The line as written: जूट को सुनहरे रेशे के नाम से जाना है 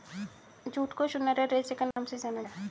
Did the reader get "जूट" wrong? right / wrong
right